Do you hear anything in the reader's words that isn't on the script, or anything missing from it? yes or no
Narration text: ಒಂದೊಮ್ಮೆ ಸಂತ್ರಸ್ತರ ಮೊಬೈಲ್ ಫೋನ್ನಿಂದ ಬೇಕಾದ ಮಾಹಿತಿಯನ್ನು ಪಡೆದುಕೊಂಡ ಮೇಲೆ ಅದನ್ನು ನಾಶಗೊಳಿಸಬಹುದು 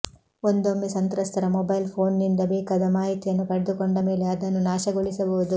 no